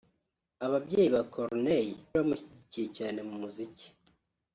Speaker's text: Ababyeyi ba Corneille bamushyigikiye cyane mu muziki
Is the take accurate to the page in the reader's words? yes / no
yes